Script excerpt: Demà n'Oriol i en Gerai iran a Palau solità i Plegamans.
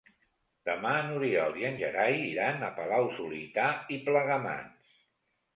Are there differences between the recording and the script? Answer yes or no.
no